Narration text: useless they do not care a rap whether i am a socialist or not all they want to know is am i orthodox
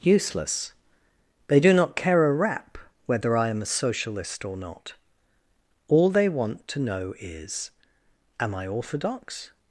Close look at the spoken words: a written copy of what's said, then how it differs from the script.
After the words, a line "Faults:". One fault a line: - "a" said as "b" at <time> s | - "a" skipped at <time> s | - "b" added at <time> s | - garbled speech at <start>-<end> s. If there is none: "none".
useless they do not care a rap whether i am a socialist or not all they want to know is am i orthodox
Faults:
none